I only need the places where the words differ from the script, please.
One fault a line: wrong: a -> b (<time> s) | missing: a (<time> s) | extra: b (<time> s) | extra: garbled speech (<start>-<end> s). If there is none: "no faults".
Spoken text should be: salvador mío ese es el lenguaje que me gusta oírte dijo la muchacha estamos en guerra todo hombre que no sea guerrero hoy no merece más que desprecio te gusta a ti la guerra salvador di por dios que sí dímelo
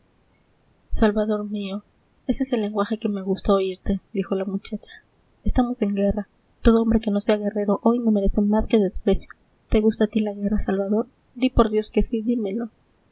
no faults